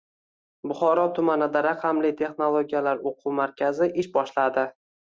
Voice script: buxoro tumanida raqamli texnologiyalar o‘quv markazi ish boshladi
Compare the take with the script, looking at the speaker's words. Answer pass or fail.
pass